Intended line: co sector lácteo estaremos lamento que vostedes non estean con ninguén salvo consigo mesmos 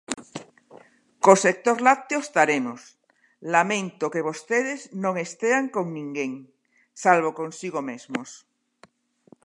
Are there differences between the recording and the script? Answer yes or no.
no